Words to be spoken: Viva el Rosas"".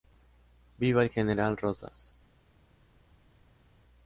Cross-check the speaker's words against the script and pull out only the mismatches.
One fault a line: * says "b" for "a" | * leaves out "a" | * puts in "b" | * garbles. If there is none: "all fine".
* puts in "general"